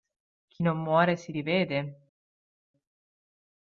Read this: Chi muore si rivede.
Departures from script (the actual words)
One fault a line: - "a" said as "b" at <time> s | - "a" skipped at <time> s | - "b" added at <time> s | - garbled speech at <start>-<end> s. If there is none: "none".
- "non" added at 0.6 s